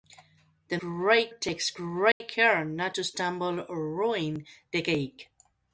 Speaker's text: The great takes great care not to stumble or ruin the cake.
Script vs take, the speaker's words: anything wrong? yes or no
no